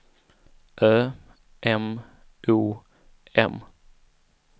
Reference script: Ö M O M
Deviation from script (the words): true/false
false